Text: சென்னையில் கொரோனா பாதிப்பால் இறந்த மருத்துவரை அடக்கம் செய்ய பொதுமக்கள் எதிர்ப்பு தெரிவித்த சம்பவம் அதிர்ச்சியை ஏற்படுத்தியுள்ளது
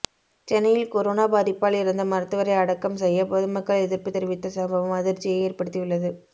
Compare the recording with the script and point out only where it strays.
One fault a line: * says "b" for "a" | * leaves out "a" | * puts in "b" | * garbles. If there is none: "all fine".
all fine